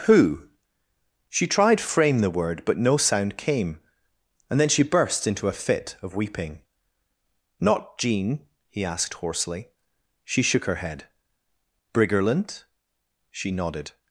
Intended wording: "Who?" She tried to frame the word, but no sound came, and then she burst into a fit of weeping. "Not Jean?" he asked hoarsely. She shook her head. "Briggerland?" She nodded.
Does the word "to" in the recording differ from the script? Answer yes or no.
yes